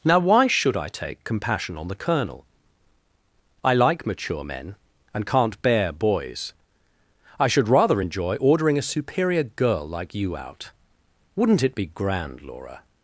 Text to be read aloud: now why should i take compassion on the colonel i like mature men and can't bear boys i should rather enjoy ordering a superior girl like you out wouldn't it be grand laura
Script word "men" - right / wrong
right